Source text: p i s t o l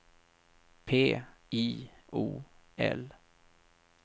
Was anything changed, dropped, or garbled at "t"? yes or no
yes